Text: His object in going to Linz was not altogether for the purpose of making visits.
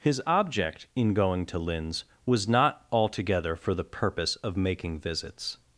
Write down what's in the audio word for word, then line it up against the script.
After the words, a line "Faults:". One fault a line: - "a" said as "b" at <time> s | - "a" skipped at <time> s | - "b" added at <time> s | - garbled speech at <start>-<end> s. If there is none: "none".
His object in going to Linz was not altogether for the purpose of making visits.
Faults:
none